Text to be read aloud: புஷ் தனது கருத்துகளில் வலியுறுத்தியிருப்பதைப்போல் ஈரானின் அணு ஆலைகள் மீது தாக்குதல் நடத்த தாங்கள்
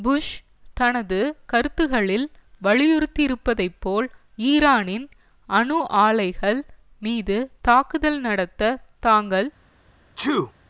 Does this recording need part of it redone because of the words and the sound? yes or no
yes